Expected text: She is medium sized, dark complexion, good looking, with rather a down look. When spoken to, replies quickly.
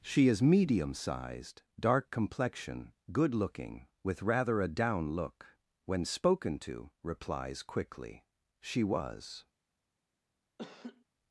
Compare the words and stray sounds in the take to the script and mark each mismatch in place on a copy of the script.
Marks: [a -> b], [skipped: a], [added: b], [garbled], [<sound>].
She is medium sized, dark complexion, good looking, with rather a down look. When spoken to, replies quickly. [added: She was] [laugh]